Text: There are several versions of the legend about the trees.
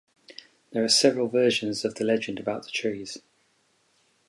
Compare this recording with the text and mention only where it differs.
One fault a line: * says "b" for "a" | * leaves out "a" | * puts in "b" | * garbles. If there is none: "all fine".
all fine